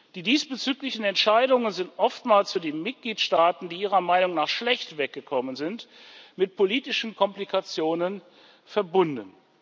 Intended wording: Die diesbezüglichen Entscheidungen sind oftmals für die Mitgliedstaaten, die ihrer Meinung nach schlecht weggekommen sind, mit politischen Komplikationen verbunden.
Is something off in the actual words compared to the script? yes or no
no